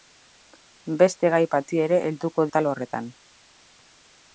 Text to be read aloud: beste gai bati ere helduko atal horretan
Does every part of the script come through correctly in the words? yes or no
yes